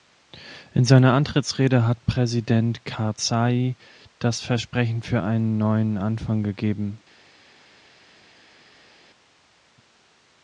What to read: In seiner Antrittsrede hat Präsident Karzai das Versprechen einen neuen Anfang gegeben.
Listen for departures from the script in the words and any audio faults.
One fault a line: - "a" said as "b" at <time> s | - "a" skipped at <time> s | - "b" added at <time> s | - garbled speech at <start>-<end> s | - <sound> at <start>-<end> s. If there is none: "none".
- "für" added at 5.0 s